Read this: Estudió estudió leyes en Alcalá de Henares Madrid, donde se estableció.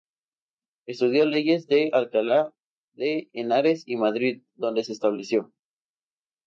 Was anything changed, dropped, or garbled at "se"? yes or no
no